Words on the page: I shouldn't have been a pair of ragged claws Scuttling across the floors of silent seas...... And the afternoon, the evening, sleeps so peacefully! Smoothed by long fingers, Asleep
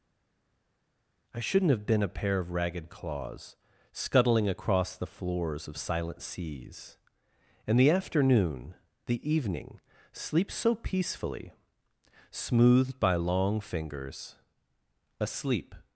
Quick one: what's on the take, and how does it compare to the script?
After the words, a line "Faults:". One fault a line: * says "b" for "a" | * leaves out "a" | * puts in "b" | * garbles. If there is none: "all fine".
I shouldn't have been a pair of ragged claws Scuttling across the floors of silent seas...... And the afternoon, the evening, sleeps so peacefully! Smoothed by long fingers, Asleep
Faults:
all fine